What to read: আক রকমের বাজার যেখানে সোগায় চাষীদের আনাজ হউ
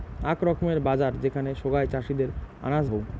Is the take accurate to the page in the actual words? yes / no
yes